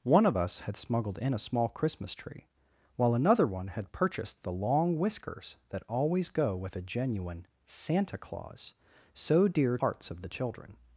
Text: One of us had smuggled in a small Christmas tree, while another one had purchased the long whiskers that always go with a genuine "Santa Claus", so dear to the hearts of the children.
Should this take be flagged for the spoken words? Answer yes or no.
yes